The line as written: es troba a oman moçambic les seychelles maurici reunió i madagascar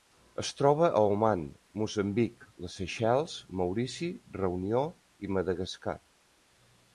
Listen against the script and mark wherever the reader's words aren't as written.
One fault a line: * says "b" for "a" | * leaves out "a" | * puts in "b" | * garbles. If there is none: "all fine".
all fine